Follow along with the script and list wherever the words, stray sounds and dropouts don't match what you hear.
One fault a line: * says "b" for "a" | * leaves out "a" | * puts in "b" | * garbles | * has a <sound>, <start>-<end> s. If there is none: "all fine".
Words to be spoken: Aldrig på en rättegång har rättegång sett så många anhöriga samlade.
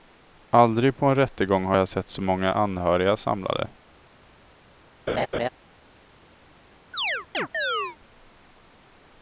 * says "jag" for "rättegång"
* has a laugh, 5.1-5.5 s
* has a chirp, 6.9-8.0 s